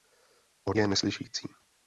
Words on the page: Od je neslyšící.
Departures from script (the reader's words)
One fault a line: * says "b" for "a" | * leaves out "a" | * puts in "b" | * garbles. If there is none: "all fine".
all fine